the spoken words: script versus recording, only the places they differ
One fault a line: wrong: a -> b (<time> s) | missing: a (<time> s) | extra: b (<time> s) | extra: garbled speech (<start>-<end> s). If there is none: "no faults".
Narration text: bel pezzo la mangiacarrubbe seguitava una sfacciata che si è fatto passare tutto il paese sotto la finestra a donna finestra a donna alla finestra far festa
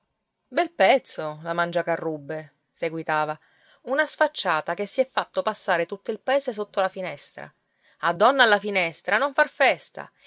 missing: finestra a donna (8.4 s)
extra: non (9.2 s)